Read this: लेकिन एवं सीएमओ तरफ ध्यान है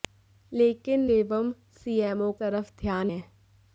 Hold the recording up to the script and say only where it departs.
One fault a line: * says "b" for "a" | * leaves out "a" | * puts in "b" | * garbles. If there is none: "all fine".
all fine